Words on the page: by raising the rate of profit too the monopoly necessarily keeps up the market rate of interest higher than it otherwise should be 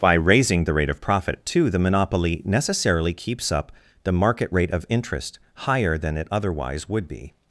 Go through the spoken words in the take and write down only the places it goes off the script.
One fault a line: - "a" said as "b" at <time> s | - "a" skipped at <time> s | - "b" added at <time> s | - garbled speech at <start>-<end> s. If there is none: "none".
- "should" said as "would" at 6.9 s